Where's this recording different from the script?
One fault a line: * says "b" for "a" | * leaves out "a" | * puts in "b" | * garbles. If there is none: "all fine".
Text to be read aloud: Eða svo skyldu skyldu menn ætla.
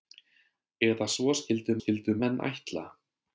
all fine